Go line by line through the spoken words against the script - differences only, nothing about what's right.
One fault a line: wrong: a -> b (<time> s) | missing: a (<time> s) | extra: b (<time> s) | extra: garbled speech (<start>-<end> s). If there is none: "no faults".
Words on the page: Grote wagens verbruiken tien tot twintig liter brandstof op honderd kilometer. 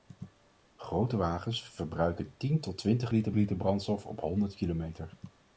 extra: liter (3.3 s)